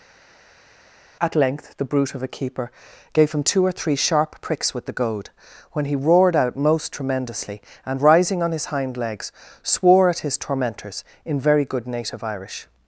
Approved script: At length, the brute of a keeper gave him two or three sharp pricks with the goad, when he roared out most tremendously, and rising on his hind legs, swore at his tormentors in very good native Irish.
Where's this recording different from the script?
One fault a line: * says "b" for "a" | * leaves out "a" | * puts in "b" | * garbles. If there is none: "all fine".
all fine